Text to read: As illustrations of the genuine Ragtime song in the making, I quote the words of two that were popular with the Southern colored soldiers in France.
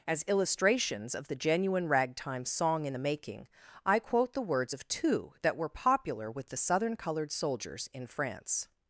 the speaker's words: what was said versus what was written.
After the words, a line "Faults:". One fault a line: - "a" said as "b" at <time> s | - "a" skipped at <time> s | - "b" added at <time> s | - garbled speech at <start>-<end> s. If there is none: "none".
As illustrations of the genuine Ragtime song in the making, I quote the words of two that were popular with the Southern colored soldiers in France.
Faults:
none